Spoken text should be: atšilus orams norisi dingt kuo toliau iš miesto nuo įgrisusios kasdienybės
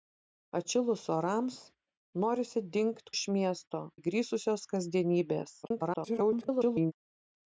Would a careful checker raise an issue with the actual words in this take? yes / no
yes